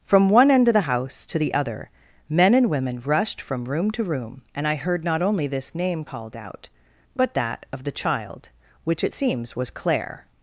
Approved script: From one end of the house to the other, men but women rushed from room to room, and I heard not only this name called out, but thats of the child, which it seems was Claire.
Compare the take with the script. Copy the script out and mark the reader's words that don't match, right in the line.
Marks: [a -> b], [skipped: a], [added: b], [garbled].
From one end of the house to the other, men [but -> and] women rushed from room to room, and I heard not only this name called out, but [thats -> that] of the child, which it seems was Claire.